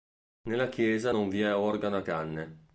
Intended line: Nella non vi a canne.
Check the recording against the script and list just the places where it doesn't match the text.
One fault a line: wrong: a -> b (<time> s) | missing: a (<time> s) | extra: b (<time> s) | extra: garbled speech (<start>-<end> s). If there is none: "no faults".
extra: chiesa (0.7 s)
extra: è organo (1.4 s)